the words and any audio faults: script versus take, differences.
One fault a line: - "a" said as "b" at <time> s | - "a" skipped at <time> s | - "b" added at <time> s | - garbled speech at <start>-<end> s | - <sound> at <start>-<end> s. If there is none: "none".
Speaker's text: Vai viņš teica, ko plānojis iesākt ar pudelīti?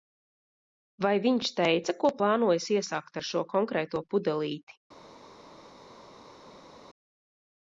- "šo konkrēto" added at 3.3 s